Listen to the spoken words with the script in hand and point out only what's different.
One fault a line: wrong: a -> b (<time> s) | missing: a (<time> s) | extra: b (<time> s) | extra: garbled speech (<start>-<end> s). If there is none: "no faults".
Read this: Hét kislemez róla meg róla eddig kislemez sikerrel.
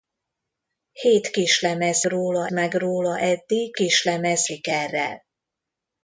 no faults